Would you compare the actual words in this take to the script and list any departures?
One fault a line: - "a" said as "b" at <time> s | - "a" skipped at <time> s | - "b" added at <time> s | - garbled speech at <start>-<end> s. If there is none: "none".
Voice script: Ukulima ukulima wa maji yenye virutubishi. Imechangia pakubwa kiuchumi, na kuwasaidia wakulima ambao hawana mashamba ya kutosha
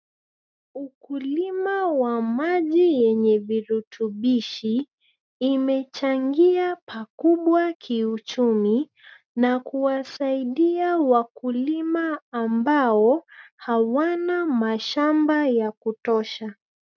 - "ukulima" skipped at 1.9 s